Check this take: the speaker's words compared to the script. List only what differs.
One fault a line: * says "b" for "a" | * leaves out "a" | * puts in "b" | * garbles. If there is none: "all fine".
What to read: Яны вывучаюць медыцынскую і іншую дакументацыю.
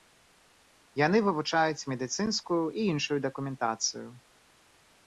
all fine